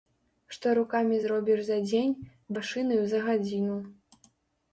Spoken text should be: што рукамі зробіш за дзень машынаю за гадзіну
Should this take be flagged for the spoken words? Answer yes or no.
no